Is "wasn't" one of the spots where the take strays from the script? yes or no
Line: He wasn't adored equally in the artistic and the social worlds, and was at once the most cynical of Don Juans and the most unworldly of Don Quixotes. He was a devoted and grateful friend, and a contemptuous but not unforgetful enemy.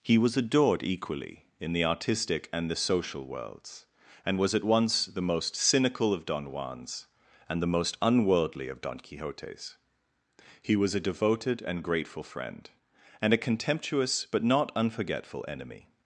yes